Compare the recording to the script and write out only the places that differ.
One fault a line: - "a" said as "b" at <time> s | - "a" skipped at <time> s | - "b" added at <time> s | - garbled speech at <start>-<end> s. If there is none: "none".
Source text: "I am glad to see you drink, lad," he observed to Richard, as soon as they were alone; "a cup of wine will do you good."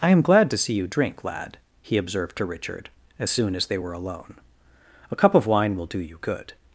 none